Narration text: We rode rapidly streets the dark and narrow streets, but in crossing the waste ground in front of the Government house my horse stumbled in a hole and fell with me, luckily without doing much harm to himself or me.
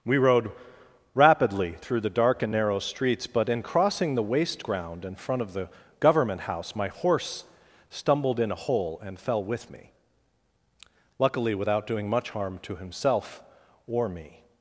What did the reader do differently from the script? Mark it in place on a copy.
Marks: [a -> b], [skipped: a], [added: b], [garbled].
We rode rapidly [streets -> through] the dark and narrow streets, but in crossing the waste ground in front of the Government house my horse stumbled in a hole and fell with me, luckily without doing much harm to himself or me.